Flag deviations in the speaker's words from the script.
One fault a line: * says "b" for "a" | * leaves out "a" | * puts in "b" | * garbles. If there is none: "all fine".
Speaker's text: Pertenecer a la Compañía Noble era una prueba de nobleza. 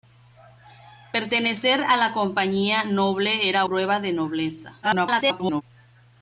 * leaves out "una"
* garbles